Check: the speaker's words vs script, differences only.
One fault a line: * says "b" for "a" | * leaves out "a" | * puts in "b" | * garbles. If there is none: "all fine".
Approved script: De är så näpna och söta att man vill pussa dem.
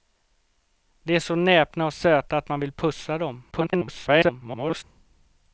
* garbles